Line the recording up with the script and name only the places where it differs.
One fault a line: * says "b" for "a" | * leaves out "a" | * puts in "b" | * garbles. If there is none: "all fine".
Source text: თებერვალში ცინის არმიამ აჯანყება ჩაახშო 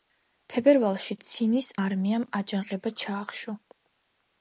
all fine